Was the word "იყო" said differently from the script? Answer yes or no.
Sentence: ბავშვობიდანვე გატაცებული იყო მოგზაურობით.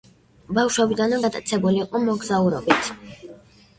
no